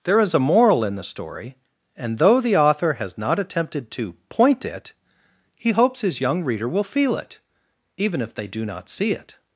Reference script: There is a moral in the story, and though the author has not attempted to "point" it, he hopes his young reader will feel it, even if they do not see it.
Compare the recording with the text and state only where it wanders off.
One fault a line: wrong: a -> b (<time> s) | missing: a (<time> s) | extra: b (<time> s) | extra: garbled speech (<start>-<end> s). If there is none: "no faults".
no faults